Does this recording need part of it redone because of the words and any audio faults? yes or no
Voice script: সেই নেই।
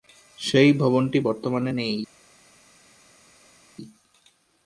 yes